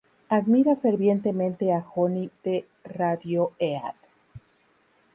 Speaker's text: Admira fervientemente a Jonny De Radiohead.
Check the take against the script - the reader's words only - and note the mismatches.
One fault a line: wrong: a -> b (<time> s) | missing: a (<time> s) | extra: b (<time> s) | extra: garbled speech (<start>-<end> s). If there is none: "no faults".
no faults